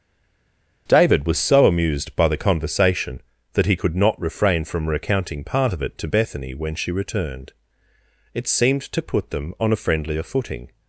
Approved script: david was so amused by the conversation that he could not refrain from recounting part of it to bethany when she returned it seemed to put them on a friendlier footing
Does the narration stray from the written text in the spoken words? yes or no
no